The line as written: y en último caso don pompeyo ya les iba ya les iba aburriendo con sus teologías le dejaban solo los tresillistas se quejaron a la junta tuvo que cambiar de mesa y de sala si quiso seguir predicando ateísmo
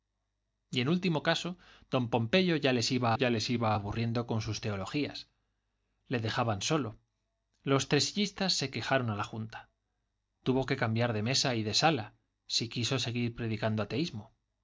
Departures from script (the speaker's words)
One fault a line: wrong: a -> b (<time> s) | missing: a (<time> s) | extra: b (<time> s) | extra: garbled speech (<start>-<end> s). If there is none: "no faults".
no faults